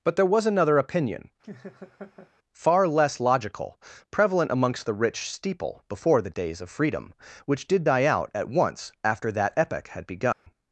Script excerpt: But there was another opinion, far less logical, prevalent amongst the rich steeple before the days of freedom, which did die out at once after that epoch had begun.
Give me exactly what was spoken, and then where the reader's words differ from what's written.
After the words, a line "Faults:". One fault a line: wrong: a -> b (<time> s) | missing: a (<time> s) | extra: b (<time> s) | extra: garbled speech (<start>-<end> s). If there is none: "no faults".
But there was another opinion, far less logical, prevalent amongst the rich steeple before the days of freedom, which did die out at once after that epoch had begun.
Faults:
no faults